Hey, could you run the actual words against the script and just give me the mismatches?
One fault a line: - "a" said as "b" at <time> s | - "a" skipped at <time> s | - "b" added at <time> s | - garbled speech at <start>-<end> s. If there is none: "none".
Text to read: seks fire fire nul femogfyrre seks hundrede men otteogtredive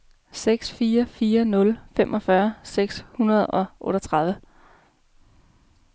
- "men" said as "og" at 3.5 s